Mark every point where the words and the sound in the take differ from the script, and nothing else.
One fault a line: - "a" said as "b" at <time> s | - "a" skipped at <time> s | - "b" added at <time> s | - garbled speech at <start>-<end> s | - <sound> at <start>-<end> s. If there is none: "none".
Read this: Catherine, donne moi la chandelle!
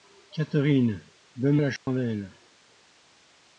- "moi" skipped at 1.6 s
- dropout at 1.8-1.9 s